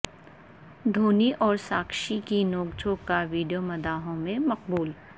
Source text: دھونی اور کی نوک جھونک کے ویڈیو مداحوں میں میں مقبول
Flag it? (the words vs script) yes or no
yes